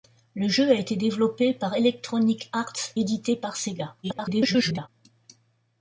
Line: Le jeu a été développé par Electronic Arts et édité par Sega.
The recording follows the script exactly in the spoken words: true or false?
false